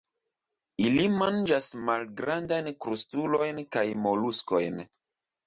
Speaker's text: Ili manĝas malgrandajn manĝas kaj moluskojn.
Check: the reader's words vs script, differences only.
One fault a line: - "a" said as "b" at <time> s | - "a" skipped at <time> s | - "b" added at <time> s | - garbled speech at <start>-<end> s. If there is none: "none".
- "manĝas" said as "krustulojn" at 2.9 s